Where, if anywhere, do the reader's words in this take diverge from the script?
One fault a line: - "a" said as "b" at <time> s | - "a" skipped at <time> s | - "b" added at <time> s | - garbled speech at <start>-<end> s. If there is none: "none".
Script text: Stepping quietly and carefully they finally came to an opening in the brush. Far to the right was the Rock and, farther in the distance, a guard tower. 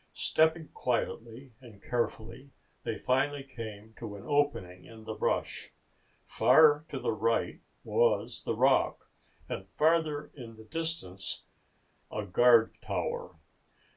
none